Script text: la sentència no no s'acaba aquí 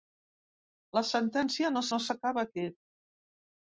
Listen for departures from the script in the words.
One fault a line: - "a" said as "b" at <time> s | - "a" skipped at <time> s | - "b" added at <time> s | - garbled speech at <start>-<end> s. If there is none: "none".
none